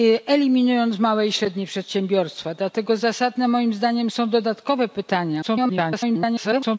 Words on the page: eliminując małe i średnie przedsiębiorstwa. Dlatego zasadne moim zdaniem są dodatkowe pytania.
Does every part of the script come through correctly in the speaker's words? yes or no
no